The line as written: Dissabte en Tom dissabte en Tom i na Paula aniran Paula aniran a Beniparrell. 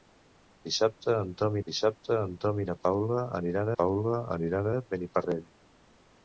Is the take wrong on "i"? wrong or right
right